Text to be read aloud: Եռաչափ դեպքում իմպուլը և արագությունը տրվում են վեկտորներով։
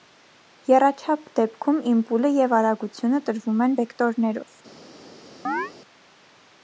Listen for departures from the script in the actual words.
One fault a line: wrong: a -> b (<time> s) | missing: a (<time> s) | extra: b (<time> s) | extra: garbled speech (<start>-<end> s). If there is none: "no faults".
no faults